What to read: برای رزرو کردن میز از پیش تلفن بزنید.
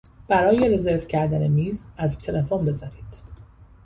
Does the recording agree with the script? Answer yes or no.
no